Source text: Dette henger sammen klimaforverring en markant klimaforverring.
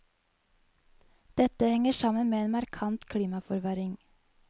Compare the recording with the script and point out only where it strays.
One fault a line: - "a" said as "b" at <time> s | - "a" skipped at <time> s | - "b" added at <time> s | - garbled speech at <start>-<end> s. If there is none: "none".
- "klimaforverring" said as "med" at 2.3 s